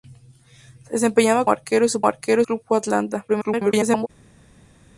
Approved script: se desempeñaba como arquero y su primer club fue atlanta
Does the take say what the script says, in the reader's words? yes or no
no